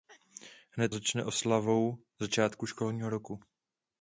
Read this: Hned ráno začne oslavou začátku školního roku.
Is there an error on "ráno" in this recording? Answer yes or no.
yes